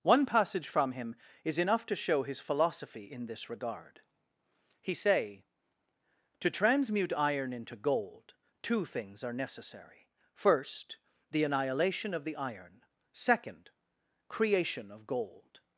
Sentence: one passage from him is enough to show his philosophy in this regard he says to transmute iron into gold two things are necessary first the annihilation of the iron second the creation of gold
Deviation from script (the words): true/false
true